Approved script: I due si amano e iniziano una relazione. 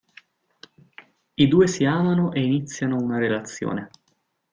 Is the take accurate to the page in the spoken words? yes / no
yes